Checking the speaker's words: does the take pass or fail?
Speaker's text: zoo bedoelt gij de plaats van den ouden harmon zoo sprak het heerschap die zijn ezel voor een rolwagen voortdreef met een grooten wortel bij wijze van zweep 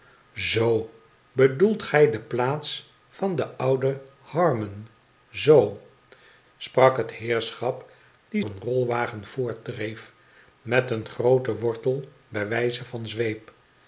fail